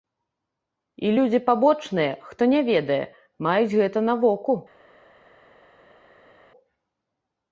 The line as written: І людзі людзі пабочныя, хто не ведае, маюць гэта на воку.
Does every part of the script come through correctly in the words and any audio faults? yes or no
no